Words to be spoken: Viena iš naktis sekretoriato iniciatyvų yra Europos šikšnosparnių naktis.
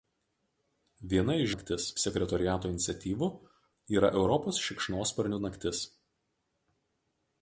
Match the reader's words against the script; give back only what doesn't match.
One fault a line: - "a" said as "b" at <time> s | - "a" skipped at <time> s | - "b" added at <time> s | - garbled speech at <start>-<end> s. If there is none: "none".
none